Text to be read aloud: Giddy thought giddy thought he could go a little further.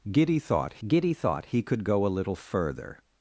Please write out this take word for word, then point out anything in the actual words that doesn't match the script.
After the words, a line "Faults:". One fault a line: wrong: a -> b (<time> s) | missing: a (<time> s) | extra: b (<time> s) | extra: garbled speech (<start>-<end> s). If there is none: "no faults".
Giddy thought giddy thought he could go a little further.
Faults:
no faults